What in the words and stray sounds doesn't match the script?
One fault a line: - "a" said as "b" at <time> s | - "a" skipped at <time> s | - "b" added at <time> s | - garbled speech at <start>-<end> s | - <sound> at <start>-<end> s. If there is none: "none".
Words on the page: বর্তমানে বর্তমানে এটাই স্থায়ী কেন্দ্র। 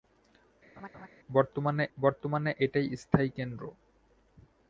- laugh at 0.8-1.1 s